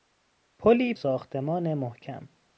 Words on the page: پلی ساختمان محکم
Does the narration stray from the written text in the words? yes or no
no